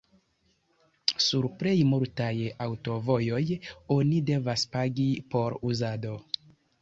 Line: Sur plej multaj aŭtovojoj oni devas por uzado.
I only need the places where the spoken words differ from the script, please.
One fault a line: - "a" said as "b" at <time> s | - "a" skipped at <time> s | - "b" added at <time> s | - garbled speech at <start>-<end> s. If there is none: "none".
- "pagi" added at 4.8 s